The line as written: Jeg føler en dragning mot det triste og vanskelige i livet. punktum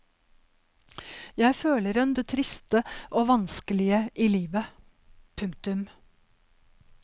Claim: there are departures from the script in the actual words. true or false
true